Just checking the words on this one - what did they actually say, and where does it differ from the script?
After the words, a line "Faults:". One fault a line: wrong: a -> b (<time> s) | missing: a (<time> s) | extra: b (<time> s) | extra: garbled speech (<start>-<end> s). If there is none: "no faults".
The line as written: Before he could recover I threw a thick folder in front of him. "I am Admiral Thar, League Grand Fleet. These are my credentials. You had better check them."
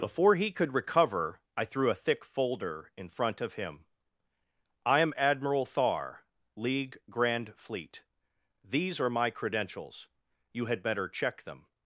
Before he could recover I threw a thick folder in front of him. "I am Admiral Thar, League Grand Fleet. These are my credentials. You had better check them."
Faults:
no faults